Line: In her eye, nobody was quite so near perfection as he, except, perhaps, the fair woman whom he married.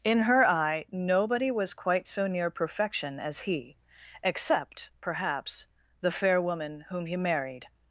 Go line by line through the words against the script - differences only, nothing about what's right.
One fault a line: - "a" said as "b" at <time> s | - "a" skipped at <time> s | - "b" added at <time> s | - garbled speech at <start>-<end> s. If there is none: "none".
none